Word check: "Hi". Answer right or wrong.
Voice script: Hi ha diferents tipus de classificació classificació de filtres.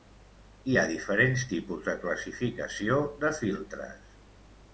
right